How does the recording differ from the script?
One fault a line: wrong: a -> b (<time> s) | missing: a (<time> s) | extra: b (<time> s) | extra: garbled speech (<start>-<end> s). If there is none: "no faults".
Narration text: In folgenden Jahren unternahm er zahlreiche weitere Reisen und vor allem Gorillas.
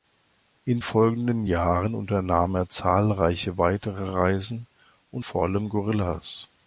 no faults